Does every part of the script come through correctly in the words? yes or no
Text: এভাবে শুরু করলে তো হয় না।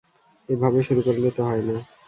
yes